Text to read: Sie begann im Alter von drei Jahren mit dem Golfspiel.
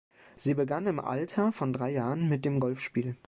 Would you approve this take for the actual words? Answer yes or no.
yes